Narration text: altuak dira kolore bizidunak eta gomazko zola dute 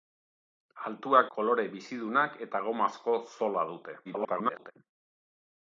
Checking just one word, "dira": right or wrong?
wrong